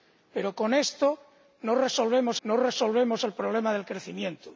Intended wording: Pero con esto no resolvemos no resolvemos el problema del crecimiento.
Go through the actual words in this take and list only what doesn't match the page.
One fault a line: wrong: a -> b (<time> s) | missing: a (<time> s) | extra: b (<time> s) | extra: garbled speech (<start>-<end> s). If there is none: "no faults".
no faults